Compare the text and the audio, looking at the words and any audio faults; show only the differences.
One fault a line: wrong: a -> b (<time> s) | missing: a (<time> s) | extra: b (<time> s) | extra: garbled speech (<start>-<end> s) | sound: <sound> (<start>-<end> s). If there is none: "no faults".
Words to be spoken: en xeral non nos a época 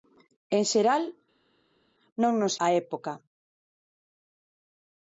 no faults